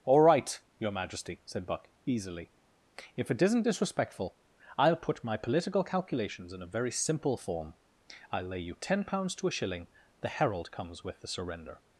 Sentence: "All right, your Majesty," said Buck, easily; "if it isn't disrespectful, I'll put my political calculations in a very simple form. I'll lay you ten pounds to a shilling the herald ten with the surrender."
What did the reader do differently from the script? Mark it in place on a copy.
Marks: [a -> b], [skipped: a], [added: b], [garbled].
"All right, your Majesty," said Buck, easily; "if it isn't disrespectful, I'll put my political calculations in a very simple form. I'll lay you ten pounds to a shilling the herald [ten -> comes] with the surrender."